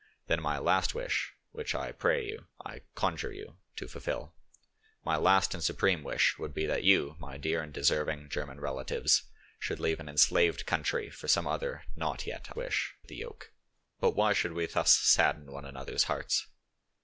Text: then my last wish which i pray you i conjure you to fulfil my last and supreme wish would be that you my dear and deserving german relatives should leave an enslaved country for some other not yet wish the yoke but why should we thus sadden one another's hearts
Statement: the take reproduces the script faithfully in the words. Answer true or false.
true